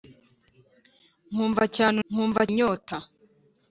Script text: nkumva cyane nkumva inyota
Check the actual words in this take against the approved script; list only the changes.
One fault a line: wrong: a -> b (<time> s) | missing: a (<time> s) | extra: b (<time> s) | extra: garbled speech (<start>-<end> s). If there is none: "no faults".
no faults